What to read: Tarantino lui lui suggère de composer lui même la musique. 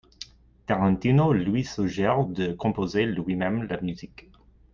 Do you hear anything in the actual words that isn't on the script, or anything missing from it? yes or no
yes